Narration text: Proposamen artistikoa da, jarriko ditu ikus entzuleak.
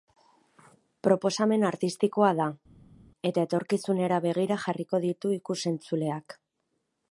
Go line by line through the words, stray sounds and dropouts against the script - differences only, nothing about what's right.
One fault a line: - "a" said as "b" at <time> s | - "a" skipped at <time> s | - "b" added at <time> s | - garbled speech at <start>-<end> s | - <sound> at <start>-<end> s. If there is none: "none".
- "eta etorkizunera begira" added at 3.3 s